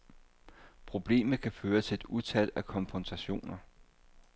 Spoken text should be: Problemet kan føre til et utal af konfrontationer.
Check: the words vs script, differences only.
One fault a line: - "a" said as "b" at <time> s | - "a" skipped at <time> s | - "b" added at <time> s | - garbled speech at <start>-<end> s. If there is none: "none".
none